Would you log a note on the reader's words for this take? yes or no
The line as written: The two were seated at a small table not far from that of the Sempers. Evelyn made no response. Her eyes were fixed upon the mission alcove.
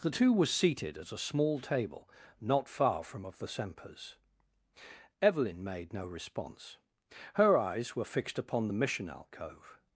yes